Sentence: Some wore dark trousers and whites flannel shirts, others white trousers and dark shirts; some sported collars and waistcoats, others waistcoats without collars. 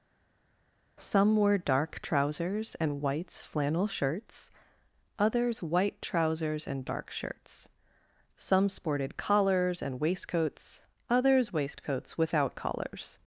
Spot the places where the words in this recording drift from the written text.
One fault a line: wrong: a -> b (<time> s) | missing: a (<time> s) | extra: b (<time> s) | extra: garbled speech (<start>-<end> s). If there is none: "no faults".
no faults